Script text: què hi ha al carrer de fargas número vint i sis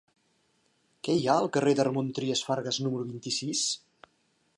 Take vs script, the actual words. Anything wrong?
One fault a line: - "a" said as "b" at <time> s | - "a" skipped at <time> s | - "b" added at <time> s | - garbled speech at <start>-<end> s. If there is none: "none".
- "ramon trias" added at 1.9 s